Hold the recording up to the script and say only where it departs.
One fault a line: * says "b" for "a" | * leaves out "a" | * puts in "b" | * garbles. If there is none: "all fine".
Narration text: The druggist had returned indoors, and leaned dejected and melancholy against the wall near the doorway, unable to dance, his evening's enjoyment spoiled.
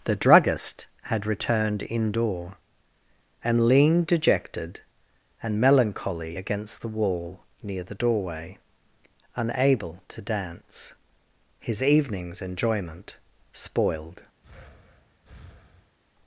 * says "indoor" for "indoors"